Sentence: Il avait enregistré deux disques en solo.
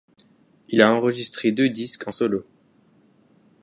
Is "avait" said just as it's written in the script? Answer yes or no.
no